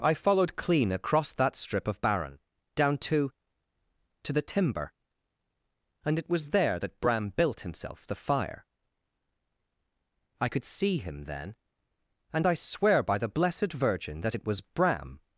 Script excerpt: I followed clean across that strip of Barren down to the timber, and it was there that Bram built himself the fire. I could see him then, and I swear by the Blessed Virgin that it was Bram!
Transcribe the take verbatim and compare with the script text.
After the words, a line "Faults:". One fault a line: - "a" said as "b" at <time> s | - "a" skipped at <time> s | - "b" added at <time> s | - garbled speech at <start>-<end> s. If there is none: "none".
I followed clean across that strip of Barren down to to the timber, and it was there that Bram built himself the fire. I could see him then, and I swear by the Blessed Virgin that it was Bram!
Faults:
- "to" added at 4.2 s